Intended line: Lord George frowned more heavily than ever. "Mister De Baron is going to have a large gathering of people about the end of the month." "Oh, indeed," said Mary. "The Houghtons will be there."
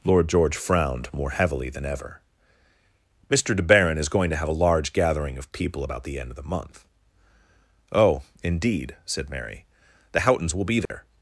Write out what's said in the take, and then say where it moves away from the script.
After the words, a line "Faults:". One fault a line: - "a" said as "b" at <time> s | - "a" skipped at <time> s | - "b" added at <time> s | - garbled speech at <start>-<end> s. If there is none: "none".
Lord George frowned more heavily than ever. "Mister De Baron is going to have a large gathering of people about the end of the month." "Oh, indeed," said Mary. "The Houghtons will be there."
Faults:
none